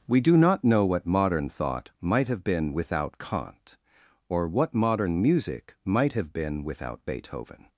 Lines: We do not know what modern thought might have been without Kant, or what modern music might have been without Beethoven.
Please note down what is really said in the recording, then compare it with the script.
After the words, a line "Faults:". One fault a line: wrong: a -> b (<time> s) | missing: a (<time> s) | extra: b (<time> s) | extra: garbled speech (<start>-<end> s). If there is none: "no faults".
We do not know what modern thought might have been without Kant, or what modern music might have been without Beethoven.
Faults:
no faults